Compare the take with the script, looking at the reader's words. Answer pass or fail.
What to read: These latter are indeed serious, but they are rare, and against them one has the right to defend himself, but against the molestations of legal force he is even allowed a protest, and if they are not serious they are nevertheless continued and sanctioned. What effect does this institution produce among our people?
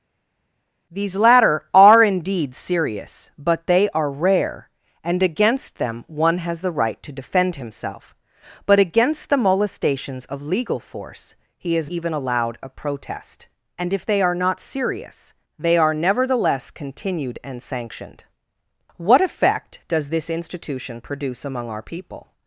pass